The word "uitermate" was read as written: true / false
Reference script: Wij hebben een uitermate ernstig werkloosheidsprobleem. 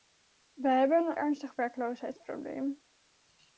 false